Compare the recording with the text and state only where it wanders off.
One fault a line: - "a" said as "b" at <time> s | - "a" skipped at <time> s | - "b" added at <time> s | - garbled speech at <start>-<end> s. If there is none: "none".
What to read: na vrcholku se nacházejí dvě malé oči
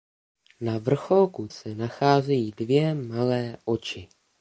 none